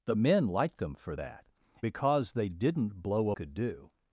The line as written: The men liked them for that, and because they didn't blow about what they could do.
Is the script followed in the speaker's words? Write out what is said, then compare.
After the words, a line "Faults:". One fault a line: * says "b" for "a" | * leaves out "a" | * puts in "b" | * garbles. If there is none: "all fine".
The men liked them for that, because they didn't blow could do.
Faults:
* leaves out "and"
* leaves out "about what they"